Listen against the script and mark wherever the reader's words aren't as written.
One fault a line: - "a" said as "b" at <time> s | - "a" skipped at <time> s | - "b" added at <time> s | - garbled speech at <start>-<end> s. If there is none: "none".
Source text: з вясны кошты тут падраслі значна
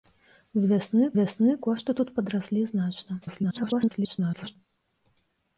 - "вясны" added at 1.2 s
- garbled speech at 3.2-4.6 s